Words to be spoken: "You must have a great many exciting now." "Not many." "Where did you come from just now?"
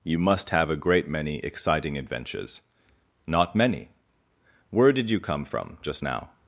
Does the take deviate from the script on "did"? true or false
false